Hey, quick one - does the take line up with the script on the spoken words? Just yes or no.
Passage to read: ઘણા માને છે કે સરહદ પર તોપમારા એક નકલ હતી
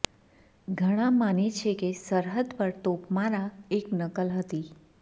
yes